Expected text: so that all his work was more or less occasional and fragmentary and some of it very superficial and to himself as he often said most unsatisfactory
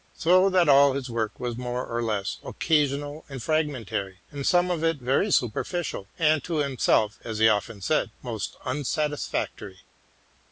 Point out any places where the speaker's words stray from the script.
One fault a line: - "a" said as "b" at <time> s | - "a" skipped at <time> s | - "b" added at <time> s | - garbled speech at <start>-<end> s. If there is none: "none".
none